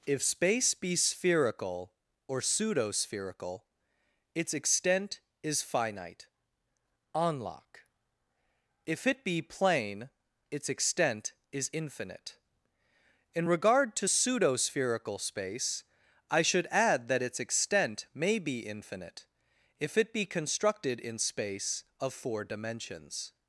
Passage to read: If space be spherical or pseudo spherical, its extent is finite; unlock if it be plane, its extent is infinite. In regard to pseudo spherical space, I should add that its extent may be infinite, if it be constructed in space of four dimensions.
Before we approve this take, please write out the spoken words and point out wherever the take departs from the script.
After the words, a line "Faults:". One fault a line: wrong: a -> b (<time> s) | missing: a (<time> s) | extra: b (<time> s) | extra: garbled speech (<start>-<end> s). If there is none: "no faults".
If space be spherical or pseudo spherical, its extent is finite; unlock if it be plane, its extent is infinite. In regard to pseudo spherical space, I should add that its extent may be infinite, if it be constructed in space of four dimensions.
Faults:
no faults